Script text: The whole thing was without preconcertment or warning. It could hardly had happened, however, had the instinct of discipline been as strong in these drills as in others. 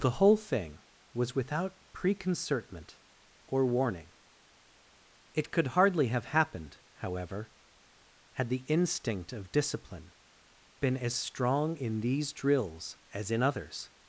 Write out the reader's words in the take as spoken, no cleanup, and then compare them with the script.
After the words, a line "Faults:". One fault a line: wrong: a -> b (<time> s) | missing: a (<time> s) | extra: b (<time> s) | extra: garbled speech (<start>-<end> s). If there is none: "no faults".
The whole thing was without preconcertment or warning. It could hardly have happened, however, had the instinct of discipline been as strong in these drills as in others.
Faults:
wrong: had -> have (6.1 s)